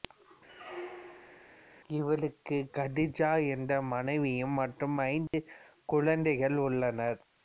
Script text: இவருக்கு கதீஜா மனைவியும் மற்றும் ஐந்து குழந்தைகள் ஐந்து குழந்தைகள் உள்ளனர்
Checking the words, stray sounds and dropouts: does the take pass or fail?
fail